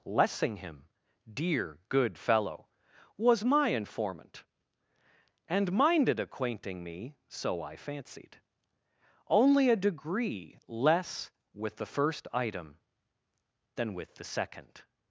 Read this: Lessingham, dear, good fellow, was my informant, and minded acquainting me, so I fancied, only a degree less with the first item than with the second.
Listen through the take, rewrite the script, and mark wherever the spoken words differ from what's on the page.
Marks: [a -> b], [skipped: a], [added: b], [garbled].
Lessingham, dear, good fellow, was my informant, and minded acquainting me, so I fancied, only a degree less with the first item than with the second.